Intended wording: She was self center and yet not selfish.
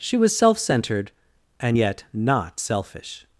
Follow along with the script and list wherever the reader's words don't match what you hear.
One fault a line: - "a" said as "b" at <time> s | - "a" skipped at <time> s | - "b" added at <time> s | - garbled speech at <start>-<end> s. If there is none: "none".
- "center" said as "centered" at 0.6 s